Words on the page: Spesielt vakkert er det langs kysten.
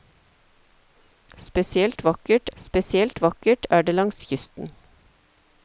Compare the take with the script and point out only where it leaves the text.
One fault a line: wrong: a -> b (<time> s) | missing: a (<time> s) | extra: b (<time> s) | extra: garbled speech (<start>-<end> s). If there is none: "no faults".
extra: spesielt vakkert (2.6 s)